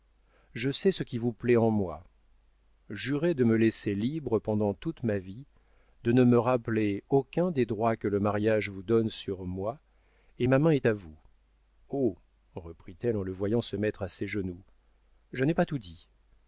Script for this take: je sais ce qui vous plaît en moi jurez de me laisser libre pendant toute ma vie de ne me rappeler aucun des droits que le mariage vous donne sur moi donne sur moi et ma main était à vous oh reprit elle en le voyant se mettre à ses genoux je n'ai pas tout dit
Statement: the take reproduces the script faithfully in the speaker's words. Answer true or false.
false